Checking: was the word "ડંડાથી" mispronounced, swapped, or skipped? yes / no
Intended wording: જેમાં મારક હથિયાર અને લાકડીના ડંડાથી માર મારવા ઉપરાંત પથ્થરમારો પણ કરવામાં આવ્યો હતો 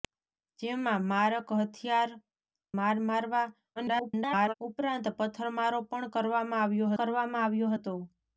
yes